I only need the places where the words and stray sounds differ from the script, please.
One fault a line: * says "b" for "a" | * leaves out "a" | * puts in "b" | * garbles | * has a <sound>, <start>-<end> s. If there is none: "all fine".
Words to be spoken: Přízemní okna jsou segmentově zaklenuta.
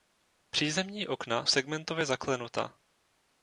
* leaves out "jsou"